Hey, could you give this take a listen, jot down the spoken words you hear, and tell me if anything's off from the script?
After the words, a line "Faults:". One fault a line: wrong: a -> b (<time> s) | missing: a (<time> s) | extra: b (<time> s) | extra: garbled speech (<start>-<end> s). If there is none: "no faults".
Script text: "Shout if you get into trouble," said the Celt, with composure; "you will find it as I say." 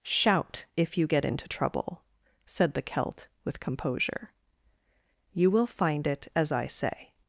"Shout if you get into trouble," said the Celt, with composure; "you will find it as I say."
Faults:
no faults